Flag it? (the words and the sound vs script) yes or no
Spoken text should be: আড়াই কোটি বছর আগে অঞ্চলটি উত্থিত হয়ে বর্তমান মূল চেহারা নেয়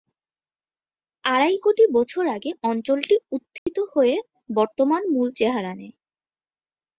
yes